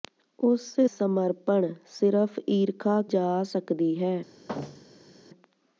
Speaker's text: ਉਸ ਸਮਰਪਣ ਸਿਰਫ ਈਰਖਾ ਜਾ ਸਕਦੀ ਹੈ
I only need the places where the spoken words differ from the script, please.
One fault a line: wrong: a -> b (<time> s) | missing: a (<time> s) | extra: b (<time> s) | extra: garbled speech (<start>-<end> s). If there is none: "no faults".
no faults